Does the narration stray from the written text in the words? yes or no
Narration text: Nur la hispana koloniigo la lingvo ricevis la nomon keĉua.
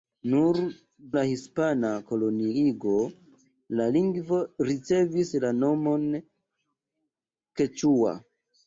no